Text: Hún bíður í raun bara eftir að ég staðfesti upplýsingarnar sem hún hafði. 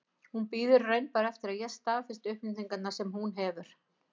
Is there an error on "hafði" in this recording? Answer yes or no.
yes